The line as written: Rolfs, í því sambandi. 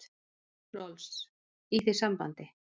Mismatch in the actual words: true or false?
false